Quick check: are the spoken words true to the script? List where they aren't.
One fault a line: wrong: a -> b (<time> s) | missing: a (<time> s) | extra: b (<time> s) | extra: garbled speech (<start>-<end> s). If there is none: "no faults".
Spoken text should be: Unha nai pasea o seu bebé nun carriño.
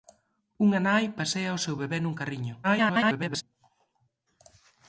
extra: garbled speech (2.6-3.4 s)